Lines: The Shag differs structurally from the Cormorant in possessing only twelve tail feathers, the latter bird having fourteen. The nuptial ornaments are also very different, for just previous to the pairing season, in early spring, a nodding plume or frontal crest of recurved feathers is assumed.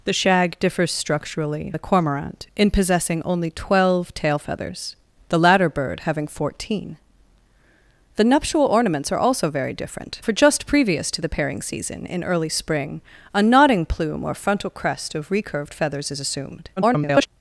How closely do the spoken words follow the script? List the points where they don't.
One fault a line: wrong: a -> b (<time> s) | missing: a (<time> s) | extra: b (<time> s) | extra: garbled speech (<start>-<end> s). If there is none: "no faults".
missing: from (1.7 s)
extra: garbled speech (16.8-17.3 s)